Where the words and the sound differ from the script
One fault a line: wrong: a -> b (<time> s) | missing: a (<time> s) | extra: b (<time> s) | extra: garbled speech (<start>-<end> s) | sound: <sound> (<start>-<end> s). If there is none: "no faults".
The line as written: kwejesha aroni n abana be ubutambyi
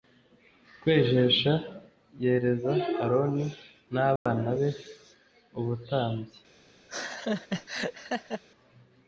extra: yereza (2.2 s)
sound: dropout (4.2-4.3 s)
sound: laugh (6.9-8.4 s)